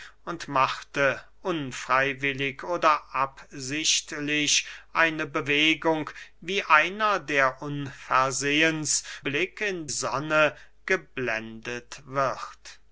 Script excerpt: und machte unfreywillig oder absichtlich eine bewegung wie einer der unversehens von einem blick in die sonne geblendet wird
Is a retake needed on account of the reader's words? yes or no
yes